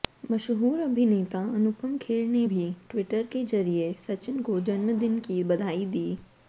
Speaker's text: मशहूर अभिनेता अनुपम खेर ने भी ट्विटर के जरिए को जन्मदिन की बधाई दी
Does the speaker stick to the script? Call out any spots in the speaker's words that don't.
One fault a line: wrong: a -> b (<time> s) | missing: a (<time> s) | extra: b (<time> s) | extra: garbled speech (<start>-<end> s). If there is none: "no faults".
extra: सचिन (4.1 s)